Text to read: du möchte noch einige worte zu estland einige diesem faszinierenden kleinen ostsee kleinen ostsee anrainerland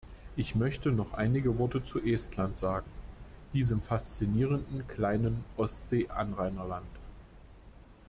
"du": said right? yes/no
no